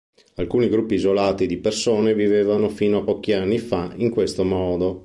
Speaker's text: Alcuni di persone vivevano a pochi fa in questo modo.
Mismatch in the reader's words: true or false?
true